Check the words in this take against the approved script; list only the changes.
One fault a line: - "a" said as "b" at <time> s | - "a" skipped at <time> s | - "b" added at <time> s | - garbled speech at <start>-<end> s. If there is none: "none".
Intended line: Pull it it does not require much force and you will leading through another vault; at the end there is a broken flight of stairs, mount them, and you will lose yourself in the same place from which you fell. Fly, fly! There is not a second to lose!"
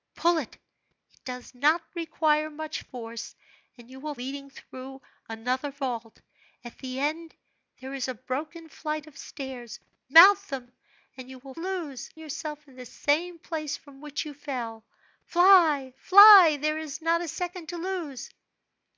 none